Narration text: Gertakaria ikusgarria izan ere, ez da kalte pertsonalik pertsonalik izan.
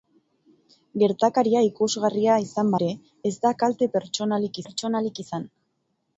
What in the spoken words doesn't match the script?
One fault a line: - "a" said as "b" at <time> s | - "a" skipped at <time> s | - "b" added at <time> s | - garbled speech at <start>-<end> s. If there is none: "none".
none